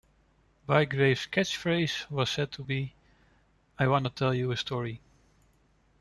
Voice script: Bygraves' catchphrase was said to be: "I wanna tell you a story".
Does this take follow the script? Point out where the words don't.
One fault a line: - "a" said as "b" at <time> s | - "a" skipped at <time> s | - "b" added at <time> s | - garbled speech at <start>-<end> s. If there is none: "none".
none